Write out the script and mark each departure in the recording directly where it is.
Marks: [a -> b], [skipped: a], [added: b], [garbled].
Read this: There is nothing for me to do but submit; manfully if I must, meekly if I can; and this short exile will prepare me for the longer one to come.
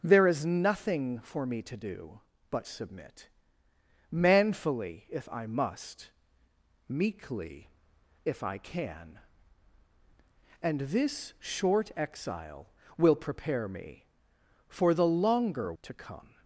There is nothing for me to do but submit; manfully if I must, meekly if I can; and this short exile will prepare me for the longer [skipped: one] to come.